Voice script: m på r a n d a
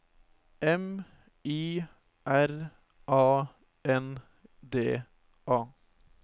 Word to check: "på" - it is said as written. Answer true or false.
false